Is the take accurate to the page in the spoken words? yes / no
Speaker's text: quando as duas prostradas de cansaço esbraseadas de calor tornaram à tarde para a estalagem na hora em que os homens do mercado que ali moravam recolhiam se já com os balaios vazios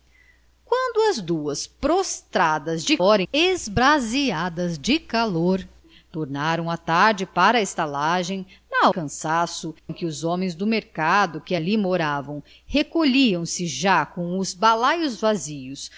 no